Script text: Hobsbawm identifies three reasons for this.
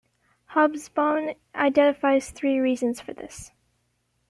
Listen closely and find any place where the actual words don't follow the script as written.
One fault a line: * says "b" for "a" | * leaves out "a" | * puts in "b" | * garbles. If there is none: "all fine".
all fine